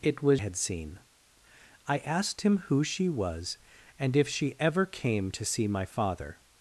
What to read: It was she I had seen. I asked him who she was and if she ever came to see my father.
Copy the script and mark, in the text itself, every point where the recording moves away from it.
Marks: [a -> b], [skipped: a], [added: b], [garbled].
It was [skipped: she I] had seen. I asked him who she was and if she ever came to see my father.